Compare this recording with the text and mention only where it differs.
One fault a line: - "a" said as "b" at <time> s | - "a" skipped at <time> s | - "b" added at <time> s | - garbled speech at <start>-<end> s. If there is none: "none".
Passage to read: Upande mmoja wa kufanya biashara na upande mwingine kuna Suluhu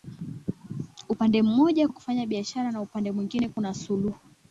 none